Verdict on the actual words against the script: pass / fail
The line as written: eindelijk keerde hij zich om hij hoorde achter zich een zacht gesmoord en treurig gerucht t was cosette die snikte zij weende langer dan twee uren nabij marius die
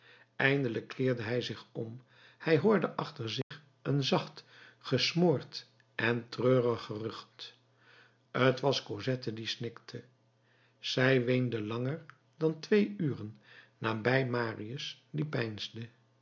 pass